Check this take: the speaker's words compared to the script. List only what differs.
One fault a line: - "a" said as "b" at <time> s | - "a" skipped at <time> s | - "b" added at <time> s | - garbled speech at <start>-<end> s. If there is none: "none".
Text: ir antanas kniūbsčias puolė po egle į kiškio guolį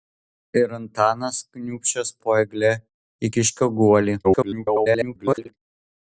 - "puolė" skipped at 2.1 s
- garbled speech at 4.2-5.5 s